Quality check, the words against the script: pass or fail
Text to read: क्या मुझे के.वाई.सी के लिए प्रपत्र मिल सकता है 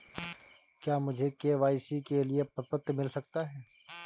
pass